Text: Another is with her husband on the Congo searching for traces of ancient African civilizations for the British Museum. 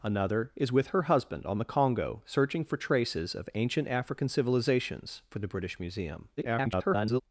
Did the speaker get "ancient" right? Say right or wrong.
right